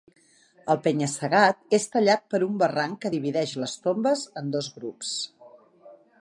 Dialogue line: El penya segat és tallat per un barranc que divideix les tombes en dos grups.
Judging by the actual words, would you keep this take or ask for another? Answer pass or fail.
pass